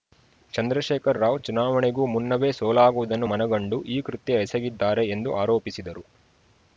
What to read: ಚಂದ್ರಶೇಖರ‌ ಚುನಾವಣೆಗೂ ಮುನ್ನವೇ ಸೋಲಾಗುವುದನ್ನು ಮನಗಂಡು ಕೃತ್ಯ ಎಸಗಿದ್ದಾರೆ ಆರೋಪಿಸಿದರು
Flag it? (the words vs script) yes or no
yes